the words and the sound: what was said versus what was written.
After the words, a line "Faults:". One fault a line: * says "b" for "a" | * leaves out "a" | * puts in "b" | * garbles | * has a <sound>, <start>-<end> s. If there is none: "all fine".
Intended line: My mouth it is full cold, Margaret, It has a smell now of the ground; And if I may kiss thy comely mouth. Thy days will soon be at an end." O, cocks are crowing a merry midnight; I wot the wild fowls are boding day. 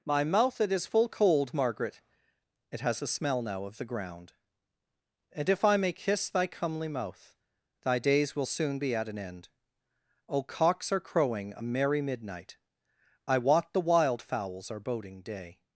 My mouth it is full cold, Margaret, It has a smell now of the ground; And if I may kiss thy comely mouth. Thy days will soon be at an end." O, cocks are crowing a merry midnight; I wot the wild fowls are boding day.
Faults:
all fine